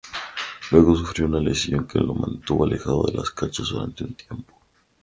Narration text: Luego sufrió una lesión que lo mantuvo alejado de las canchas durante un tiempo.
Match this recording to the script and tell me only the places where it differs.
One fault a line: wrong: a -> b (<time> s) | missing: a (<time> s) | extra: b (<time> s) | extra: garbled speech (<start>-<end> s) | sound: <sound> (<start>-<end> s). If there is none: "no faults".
no faults